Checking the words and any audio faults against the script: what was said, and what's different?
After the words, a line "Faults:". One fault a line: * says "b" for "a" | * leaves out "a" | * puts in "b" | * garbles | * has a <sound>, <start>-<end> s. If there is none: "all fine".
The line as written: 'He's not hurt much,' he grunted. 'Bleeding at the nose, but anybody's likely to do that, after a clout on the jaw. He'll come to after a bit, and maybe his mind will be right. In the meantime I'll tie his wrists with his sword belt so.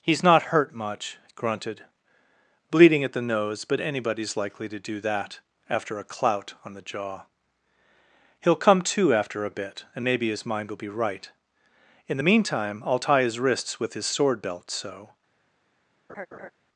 'He's not hurt much,' grunted. 'Bleeding at the nose, but anybody's likely to do that, after a clout on the jaw. He'll come to after a bit, and maybe his mind will be right. In the meantime I'll tie his wrists with his sword belt so.
Faults:
* leaves out "he"
* has a laugh, 16.1-16.5 s